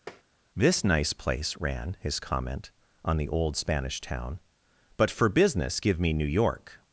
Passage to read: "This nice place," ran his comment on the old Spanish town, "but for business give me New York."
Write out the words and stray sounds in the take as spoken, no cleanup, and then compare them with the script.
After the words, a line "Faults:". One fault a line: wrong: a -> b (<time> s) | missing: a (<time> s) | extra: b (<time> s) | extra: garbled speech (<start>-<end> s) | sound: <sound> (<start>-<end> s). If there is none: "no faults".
"This nice place," ran his comment on the old Spanish town, "but for business give me New York."
Faults:
sound: tap (0.1-0.2 s)